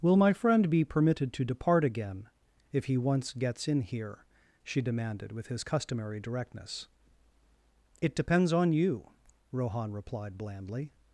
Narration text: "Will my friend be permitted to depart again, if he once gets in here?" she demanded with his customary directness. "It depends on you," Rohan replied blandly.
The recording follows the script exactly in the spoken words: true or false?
true